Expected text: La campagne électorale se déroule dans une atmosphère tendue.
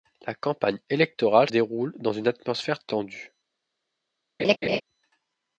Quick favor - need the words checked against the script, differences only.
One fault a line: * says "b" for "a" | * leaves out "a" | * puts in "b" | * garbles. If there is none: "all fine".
* leaves out "se"